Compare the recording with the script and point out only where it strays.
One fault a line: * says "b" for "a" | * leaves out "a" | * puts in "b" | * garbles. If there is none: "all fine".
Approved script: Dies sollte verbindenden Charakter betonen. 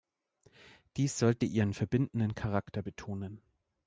* puts in "ihren"